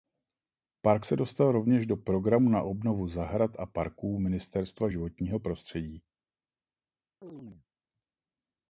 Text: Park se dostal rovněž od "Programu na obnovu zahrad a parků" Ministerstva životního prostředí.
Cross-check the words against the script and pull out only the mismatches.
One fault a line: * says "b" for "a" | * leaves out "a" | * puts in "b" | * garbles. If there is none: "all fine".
* says "do" for "od"